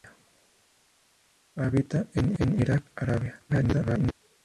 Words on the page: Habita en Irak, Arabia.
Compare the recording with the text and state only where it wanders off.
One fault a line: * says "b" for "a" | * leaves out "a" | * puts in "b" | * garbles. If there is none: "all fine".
* puts in "en"
* garbles